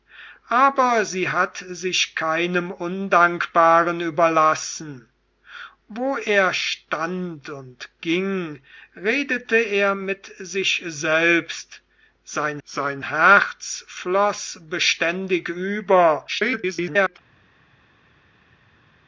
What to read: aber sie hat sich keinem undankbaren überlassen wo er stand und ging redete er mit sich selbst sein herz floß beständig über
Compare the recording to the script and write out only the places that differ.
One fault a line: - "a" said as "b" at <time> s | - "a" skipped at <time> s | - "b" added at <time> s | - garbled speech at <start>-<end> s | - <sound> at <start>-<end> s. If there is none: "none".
- "sein" added at 12.6 s
- garbled speech at 16.3-17.2 s